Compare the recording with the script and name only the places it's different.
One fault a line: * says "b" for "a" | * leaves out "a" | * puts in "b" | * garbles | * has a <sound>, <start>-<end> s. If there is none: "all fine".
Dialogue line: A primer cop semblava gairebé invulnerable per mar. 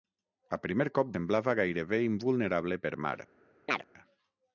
* has a chirp, 3.7-3.9 s